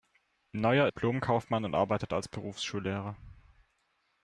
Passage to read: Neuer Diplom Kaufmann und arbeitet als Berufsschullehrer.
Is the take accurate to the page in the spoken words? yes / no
yes